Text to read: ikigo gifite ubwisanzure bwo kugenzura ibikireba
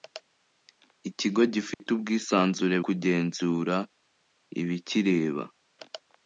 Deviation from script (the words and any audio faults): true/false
true